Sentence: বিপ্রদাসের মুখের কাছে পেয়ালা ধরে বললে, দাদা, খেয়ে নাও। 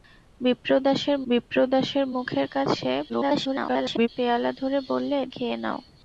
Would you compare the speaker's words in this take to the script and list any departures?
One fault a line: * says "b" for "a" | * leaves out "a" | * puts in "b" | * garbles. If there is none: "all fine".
* puts in "বিপ্রদাসের"
* garbles
* leaves out "দাদা"